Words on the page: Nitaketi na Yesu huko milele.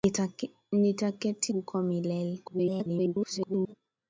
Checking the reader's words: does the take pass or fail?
fail